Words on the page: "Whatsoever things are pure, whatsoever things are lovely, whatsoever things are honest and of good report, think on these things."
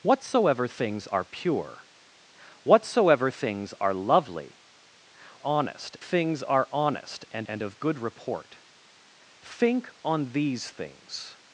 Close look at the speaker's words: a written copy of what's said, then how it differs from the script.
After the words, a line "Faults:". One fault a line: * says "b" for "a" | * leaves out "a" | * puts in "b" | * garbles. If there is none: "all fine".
"Whatsoever things are pure, whatsoever things are lovely, honest things are honest and and of good report, think on these things."
Faults:
* says "honest" for "whatsoever"
* puts in "and"